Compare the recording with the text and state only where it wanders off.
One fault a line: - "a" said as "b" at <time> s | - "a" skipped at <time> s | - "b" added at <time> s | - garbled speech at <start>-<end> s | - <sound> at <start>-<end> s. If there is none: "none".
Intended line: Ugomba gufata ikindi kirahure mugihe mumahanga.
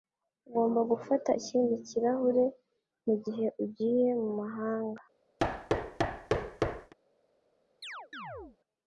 - "ugiye" added at 3.6 s
- thud at 5.4-6.9 s
- chirp at 7.8-8.6 s